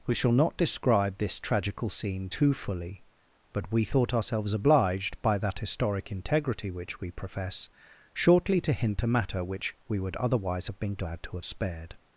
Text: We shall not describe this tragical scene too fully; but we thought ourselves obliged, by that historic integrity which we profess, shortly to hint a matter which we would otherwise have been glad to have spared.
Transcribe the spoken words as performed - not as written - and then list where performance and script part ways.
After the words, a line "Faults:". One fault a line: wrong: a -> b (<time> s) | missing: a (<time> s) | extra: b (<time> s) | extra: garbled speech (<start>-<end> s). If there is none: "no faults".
We shall not describe this tragical scene too fully; but we thought ourselves obliged, by that historic integrity which we profess, shortly to hint a matter which we would otherwise have been glad to have spared.
Faults:
no faults